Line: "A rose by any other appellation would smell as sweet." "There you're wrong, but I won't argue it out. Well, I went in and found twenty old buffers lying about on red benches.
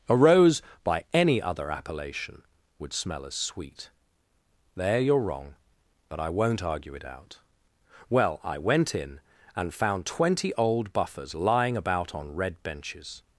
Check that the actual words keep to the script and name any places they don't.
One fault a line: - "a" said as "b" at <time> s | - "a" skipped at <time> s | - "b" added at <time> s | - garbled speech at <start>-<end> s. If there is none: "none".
none